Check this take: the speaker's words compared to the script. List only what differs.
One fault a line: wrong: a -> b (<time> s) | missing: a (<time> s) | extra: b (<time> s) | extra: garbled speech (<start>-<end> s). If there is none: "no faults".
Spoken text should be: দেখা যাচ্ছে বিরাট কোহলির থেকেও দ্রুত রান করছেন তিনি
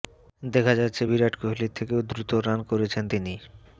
no faults